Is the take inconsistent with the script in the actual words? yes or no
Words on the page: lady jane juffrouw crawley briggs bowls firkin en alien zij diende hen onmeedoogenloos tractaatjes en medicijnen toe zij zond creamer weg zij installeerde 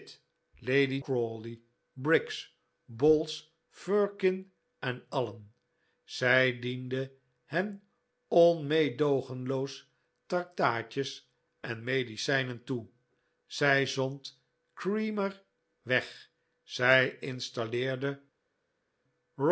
yes